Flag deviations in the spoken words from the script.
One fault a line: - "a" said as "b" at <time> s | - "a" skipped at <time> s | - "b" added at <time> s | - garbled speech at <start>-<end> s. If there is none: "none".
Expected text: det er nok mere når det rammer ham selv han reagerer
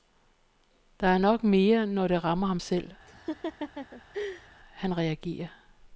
none